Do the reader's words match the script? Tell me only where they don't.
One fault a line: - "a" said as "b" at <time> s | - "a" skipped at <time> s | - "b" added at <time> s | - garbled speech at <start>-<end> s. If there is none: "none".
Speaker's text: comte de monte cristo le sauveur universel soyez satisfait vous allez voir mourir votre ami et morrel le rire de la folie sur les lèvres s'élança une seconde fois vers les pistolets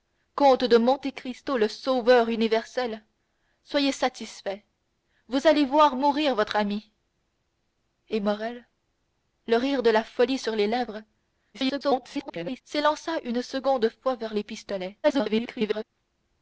- garbled speech at 11.5-12.6 s
- garbled speech at 15.0-15.8 s